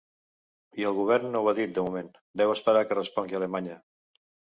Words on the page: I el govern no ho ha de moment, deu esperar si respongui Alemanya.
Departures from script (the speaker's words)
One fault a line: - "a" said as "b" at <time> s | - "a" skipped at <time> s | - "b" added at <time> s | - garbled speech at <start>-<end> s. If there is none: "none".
- "dit" added at 1.6 s
- "si" said as "que" at 2.9 s